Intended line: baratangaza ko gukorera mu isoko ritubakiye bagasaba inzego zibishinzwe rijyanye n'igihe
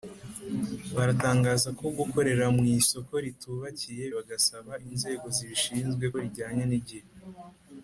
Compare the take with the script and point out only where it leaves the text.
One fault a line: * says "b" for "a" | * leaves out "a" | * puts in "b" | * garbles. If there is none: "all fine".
all fine